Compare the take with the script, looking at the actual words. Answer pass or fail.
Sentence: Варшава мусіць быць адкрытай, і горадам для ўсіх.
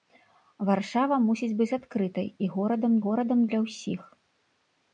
fail